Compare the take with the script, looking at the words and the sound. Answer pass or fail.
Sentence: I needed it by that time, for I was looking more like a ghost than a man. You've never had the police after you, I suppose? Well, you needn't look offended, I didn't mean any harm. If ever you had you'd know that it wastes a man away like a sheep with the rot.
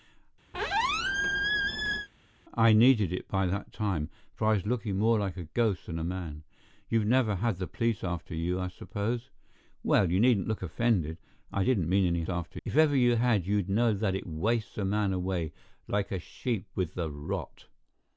fail